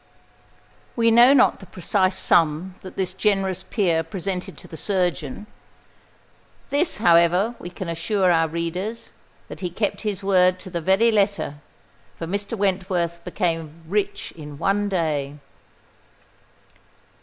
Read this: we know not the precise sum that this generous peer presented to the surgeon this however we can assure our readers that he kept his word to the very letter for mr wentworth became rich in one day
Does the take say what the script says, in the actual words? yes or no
yes